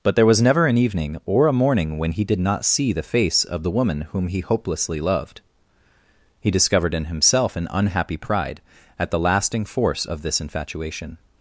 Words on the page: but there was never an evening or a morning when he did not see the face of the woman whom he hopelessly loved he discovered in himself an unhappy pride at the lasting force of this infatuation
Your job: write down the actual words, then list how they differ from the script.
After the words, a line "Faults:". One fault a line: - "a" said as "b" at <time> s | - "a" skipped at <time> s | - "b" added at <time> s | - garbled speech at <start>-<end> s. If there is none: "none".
but there was never an evening or a morning when he did not see the face of the woman whom he hopelessly loved he discovered in himself an unhappy pride at the lasting force of this infatuation
Faults:
none